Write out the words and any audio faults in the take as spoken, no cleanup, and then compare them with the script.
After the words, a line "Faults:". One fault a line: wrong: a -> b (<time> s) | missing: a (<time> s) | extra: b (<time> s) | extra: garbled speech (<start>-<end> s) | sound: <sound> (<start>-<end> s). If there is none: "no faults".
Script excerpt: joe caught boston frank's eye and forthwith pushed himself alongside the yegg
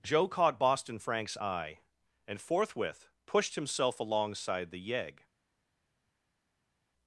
joe caught boston frank's eye and forthwith pushed himself alongside the yegg
Faults:
no faults